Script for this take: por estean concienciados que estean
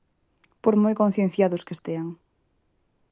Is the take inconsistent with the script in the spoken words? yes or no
yes